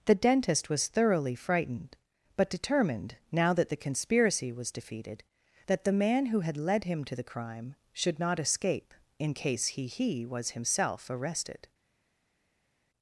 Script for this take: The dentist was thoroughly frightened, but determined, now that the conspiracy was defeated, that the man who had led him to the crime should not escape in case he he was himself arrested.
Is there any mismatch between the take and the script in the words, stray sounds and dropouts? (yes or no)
no